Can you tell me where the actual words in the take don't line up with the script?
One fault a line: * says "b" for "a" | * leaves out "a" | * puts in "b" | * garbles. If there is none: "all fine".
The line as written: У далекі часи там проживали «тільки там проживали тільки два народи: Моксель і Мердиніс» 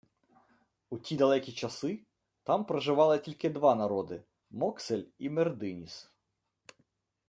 * puts in "ті"
* leaves out "там проживали тільки"